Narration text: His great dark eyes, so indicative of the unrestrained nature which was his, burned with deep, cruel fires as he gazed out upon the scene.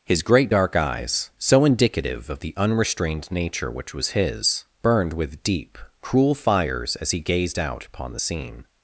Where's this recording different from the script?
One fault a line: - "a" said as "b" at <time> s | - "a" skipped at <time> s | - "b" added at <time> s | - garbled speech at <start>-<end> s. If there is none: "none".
none